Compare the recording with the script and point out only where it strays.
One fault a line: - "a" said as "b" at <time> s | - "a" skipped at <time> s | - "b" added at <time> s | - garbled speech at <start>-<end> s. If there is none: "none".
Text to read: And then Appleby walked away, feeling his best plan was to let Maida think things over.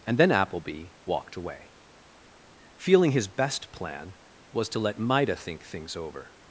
none